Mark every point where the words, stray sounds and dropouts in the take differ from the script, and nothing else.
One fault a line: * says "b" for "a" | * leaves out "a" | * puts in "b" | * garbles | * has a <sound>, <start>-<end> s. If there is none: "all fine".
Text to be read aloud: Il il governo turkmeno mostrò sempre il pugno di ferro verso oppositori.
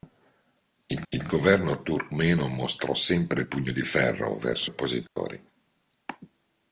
* has a dropout, 5.1-5.2 s